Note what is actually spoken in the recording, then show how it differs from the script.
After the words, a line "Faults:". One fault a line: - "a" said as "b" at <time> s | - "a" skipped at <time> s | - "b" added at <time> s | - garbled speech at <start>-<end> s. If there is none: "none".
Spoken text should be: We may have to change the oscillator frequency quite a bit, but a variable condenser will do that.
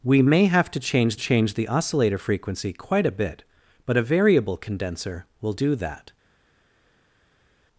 We may have to change change the oscillator frequency quite a bit, but a variable condenser will do that.
Faults:
- "change" added at 1.1 s